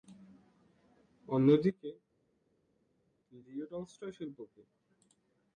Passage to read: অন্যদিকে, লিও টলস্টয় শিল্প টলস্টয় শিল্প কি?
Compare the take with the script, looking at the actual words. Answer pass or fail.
fail